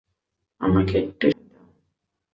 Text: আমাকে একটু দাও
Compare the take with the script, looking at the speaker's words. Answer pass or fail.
pass